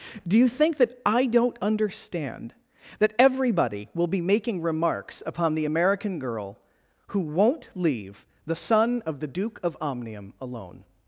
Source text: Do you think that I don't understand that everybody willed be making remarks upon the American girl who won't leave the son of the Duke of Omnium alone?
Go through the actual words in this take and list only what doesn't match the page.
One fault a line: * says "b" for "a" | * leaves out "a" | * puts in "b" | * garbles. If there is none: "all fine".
* says "will" for "willed"